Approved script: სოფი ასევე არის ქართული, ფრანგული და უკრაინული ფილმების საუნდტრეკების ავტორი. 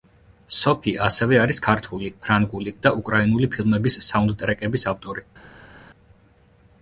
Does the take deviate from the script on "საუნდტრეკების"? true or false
false